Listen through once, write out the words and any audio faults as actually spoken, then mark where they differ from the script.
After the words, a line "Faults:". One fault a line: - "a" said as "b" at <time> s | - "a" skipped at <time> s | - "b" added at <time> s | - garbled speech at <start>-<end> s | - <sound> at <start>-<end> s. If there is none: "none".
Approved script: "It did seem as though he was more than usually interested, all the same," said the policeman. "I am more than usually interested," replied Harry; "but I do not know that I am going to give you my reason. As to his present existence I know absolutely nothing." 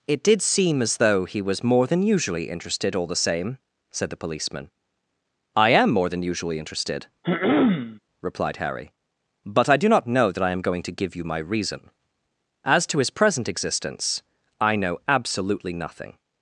"It did seem as though he was more than usually interested, all the same," said the policeman. "I am more than usually interested," replied Harry; "but I do not know that I am going to give you my reason. As to his present existence I know absolutely nothing."
Faults:
- throat clearing at 7.2-8.0 s